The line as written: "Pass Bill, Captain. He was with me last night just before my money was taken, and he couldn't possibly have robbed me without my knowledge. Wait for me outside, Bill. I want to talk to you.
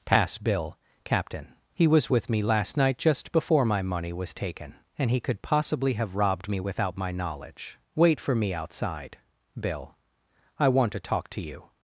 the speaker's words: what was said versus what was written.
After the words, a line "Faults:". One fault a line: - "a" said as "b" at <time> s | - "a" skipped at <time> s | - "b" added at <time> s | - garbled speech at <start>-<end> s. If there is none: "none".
"Pass Bill, Captain. He was with me last night just before my money was taken, and he could possibly have robbed me without my knowledge. Wait for me outside, Bill. I want to talk to you.
Faults:
- "couldn't" said as "could" at 5.2 s